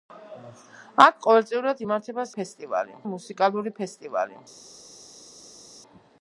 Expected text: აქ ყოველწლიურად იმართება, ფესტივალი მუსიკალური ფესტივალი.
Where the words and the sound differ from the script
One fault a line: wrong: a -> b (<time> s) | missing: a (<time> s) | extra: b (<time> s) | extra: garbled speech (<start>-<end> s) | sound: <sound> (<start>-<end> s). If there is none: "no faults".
no faults